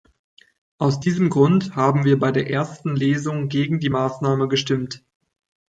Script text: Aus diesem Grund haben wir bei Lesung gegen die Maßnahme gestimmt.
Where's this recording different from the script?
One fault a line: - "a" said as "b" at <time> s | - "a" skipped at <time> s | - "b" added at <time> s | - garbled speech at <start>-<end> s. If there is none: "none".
- "der ersten" added at 2.3 s